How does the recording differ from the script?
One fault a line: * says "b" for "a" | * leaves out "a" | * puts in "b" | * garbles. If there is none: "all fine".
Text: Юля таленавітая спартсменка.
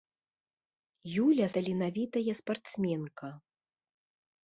all fine